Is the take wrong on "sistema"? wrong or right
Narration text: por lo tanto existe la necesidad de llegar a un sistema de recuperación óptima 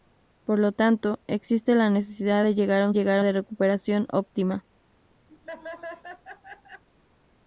wrong